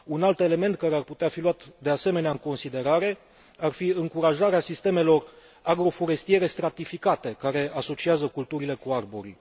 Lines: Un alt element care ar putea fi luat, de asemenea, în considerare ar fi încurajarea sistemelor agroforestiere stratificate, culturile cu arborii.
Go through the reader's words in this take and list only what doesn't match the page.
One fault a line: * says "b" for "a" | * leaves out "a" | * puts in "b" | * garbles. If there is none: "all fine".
* puts in "care asociază"